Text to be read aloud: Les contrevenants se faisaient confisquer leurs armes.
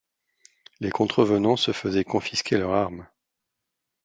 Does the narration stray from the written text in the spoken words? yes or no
no